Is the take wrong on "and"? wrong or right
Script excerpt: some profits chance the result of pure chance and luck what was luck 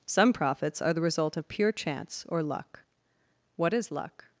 wrong